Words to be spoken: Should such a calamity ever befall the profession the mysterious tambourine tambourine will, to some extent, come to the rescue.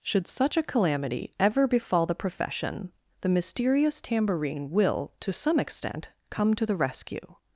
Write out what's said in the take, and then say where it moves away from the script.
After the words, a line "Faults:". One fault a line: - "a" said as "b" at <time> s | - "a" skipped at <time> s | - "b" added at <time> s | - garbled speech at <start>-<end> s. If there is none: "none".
Should such a calamity ever befall the profession the mysterious tambourine will, to some extent, come to the rescue.
Faults:
- "tambourine" skipped at 4.7 s